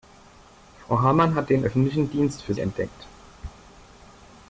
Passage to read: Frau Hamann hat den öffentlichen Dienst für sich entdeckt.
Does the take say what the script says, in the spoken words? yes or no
no